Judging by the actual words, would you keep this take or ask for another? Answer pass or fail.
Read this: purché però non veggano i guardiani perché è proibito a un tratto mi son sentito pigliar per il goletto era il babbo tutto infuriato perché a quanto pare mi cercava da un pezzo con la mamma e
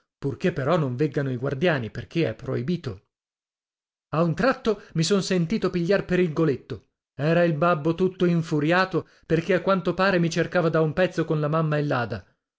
pass